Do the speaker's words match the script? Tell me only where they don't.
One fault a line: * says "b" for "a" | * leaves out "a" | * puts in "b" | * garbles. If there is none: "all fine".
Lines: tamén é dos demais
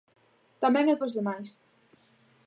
all fine